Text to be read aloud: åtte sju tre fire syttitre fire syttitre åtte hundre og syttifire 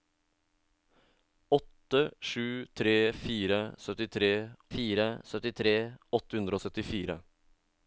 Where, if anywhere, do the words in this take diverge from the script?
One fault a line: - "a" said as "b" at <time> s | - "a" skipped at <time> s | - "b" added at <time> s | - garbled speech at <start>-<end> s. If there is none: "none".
none